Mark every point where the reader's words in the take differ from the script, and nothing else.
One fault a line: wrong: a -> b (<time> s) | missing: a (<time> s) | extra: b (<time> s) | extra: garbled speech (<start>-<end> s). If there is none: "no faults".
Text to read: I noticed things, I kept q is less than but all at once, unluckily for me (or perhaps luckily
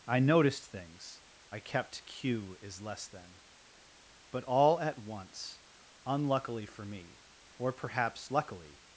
no faults